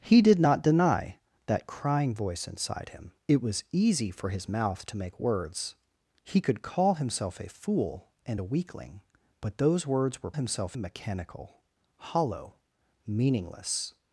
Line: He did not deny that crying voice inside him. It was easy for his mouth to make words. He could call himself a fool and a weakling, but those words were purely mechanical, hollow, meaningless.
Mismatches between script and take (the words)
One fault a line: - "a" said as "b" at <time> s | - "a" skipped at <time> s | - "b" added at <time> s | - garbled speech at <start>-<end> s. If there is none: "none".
- "purely" said as "himself" at 10.3 s